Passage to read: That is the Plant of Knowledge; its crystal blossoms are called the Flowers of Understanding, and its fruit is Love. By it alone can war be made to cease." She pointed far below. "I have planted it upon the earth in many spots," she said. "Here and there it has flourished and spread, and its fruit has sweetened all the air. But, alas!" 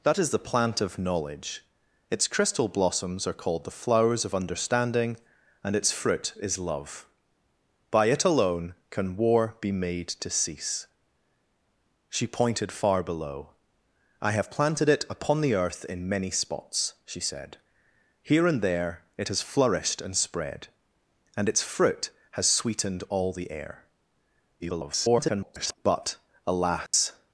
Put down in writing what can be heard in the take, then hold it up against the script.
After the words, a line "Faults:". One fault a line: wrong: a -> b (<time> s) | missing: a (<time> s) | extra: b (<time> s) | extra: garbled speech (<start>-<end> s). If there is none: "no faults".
That is the Plant of Knowledge; its crystal blossoms are called the Flowers of Understanding, and its fruit is Love. By it alone can war be made to cease." She pointed far below. "I have planted it upon the earth in many spots," she said. "Here and there it has flourished and spread, and its fruit has sweetened all the air. [garbled] But, alas!"
Faults:
extra: garbled speech (24.6-25.7 s)